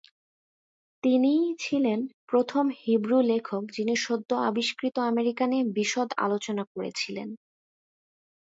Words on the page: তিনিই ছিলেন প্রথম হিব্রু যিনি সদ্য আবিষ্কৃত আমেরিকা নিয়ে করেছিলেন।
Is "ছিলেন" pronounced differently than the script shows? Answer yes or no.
no